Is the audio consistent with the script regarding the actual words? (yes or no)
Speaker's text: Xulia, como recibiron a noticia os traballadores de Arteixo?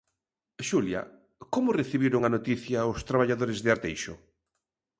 yes